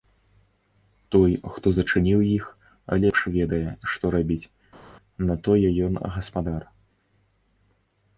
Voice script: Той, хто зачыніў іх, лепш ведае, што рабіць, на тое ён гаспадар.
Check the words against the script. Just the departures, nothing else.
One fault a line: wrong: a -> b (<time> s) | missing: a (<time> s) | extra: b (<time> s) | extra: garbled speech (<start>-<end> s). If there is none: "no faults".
no faults